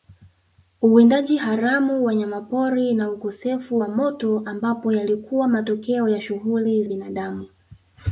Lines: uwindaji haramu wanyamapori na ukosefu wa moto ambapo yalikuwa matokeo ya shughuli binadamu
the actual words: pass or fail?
pass